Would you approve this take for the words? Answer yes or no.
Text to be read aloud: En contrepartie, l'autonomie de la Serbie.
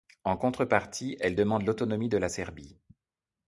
no